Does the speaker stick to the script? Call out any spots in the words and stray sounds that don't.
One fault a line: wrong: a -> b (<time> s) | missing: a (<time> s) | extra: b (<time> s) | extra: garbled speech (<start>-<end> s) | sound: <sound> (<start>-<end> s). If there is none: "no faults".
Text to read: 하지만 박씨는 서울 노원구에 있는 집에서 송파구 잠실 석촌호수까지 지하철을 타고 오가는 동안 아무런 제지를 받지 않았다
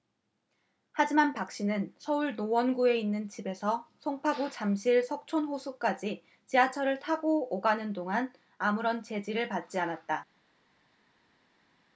no faults